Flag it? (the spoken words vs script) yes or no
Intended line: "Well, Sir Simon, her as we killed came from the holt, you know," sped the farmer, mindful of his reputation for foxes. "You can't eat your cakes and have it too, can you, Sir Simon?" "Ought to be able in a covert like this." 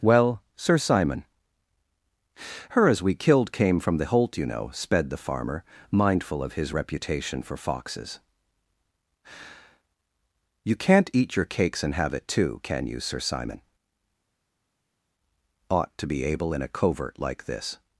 no